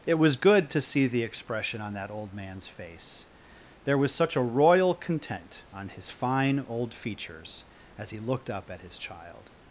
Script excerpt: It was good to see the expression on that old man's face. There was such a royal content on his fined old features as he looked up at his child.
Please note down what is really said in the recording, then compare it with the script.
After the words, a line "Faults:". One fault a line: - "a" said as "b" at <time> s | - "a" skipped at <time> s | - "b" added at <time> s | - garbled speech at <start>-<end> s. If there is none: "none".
It was good to see the expression on that old man's face. There was such a royal content on his fine old features as he looked up at his child.
Faults:
- "fined" said as "fine" at 6.1 s